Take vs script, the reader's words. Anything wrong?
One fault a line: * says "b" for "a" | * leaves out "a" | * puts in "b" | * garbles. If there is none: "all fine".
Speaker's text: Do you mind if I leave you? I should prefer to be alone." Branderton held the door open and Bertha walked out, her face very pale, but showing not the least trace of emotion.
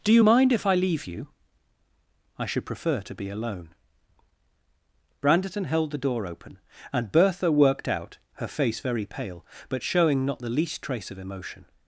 * says "worked" for "walked"